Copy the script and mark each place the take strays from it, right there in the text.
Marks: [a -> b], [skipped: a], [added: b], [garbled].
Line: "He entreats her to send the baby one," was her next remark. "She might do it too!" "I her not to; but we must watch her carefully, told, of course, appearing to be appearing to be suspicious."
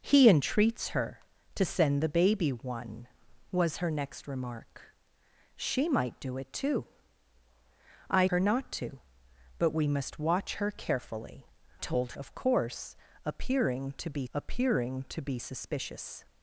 "He entreats her to send the baby one," was her next remark. "She might do it too!" "I her not to; but we must watch her carefully, told, of course, appearing to be appearing to be suspicious."